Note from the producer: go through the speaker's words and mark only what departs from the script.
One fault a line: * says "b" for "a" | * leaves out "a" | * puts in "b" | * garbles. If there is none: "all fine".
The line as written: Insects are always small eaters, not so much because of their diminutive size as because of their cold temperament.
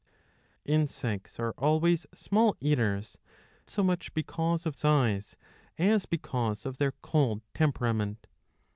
* leaves out "not"
* leaves out "their diminutive"